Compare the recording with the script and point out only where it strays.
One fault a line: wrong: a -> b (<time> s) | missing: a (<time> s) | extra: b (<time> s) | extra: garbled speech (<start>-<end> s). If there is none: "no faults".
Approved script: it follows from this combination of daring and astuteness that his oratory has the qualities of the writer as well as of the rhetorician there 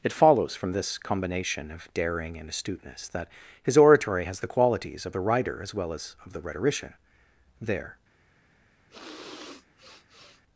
no faults